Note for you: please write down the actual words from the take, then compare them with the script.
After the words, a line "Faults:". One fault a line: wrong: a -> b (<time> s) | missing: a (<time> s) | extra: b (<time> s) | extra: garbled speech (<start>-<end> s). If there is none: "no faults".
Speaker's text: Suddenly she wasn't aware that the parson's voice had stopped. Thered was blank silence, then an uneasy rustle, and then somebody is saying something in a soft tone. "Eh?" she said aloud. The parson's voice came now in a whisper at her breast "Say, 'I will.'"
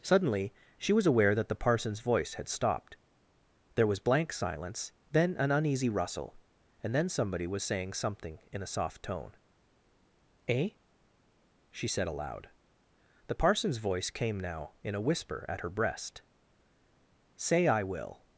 Suddenly she was aware that the parson's voice had stopped. There was blank silence, then an uneasy rustle, and then somebody was saying something in a soft tone. "Eh?" she said aloud. The parson's voice came now in a whisper at her breast "Say, 'I will.'"
Faults:
wrong: wasn't -> was (0.9 s)
wrong: Thered -> There (3.8 s)
wrong: is -> was (7.5 s)